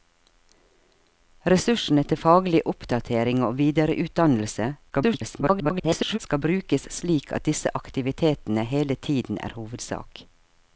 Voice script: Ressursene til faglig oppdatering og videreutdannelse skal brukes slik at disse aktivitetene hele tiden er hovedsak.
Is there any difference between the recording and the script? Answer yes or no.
yes